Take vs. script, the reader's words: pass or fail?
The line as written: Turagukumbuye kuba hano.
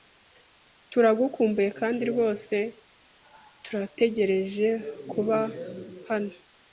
fail